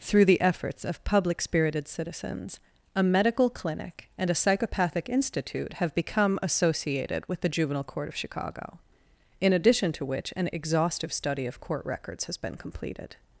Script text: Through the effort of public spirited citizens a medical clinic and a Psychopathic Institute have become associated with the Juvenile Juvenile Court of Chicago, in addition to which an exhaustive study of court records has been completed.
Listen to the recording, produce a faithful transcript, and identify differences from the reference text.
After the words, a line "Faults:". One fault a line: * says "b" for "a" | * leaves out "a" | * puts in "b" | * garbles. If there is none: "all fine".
Through the efforts of public spirited citizens a medical clinic and a Psychopathic Institute have become associated with the Juvenile Court of Chicago, in addition to which an exhaustive study of court records has been completed.
Faults:
* says "efforts" for "effort"
* leaves out "Juvenile"